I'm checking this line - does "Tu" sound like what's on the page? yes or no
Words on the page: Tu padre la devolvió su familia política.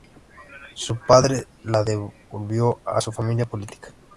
no